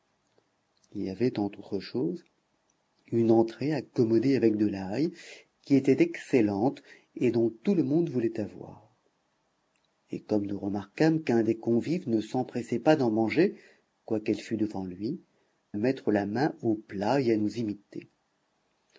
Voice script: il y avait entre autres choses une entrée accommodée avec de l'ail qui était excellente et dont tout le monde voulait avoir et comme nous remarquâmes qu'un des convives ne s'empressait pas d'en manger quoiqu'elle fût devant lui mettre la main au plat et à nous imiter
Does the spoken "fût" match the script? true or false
true